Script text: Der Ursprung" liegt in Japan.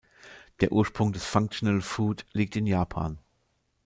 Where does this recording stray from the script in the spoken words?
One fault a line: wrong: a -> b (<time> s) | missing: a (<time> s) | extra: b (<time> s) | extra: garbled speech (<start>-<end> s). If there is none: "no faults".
extra: des Functional Food (1.1 s)